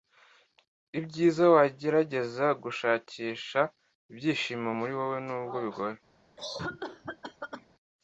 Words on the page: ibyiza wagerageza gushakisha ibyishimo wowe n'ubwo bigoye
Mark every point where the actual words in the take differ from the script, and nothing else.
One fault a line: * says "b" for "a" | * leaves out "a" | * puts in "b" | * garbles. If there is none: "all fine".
* puts in "muri"